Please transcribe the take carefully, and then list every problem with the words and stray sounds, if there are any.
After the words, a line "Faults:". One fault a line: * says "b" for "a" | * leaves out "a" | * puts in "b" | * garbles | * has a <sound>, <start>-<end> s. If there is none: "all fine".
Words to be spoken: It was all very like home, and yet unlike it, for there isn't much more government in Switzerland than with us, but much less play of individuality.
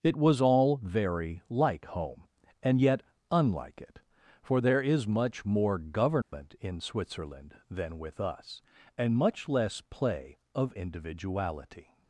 It was all very like home, and yet unlike it, for there is much more government in Switzerland than with us, and much less play of individuality.
Faults:
* says "is" for "isn't"
* has a dropout, 6.2-6.3 s
* says "and" for "but"